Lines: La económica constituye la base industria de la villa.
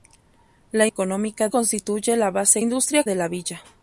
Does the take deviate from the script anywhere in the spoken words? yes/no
no